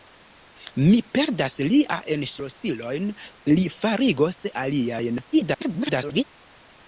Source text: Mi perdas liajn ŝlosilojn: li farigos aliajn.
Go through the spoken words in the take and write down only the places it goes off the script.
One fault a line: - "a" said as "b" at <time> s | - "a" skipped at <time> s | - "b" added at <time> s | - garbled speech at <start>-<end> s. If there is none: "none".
- garbled speech at 5.3-6.2 s